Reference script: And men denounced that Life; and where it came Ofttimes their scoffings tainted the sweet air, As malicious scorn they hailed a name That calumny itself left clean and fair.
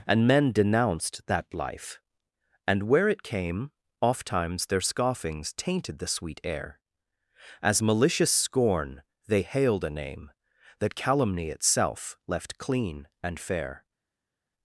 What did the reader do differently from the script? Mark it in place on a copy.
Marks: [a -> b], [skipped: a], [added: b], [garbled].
And men denounced that Life; and where it came Ofttimes their scoffings tainted the sweet air, As malicious scorn they hailed a name That calumny itself left clean and fair.